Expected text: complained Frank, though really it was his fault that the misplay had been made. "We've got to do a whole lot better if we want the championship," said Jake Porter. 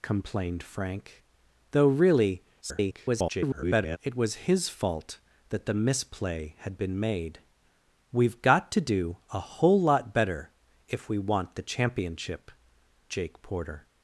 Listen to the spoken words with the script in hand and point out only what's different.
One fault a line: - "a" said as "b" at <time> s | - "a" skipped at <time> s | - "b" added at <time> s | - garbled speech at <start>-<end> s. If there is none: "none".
- garbled speech at 2.6-4.0 s
- "said" skipped at 12.5 s